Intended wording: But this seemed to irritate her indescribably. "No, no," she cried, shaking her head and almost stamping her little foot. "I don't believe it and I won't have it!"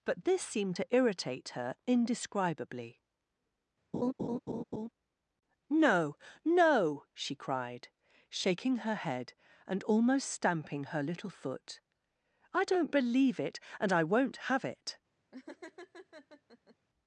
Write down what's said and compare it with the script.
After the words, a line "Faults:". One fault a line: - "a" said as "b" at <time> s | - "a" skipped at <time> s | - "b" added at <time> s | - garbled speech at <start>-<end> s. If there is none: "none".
But this seemed to irritate her indescribably. "No, no," she cried, shaking her head and almost stamping her little foot. "I don't believe it and I won't have it!"
Faults:
none